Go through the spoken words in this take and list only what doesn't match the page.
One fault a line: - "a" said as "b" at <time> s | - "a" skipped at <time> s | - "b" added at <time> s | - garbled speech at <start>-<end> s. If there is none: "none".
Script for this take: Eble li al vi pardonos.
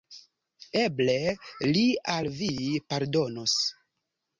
none